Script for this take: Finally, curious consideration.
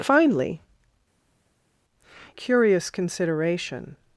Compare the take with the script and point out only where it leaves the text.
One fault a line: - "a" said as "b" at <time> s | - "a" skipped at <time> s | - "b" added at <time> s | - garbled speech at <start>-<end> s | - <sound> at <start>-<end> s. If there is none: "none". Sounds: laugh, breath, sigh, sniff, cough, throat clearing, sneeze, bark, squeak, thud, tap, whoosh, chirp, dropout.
none